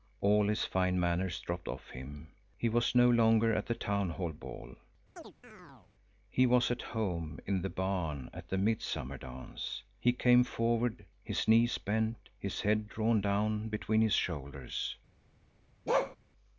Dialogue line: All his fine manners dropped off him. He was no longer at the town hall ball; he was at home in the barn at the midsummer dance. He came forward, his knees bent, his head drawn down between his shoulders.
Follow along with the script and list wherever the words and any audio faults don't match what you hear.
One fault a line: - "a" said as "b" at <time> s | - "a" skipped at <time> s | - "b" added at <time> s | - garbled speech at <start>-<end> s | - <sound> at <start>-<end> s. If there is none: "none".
- chirp at 5.2-5.9 s
- bark at 15.9-16.2 s